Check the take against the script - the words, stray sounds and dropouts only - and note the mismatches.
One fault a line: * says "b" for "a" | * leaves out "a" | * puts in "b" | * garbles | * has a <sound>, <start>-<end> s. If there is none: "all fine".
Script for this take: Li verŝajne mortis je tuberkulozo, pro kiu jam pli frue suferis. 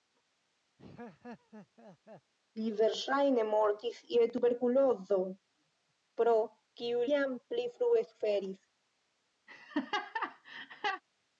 * has a laugh, 0.8-2.3 s
* has a laugh, 9.5-11.0 s